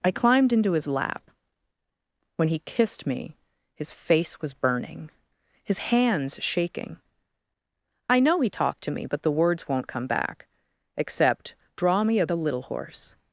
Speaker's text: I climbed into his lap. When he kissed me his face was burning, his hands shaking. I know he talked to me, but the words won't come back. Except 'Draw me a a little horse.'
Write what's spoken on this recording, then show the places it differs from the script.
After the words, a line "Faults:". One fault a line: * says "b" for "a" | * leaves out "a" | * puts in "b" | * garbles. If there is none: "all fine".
I climbed into his lap. When he kissed me his face was burning, his hands shaking. I know he talked to me, but the words won't come back. Except 'Draw me a a little horse.'
Faults:
all fine